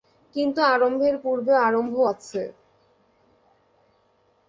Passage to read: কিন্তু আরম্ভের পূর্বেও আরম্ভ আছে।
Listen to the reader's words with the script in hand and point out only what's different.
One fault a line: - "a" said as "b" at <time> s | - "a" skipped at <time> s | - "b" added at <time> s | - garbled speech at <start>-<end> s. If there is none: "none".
none